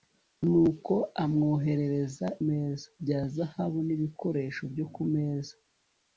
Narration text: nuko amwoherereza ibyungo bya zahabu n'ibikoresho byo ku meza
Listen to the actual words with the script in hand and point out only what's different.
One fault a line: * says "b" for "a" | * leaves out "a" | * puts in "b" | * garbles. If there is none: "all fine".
* says "meza" for "ibyungo"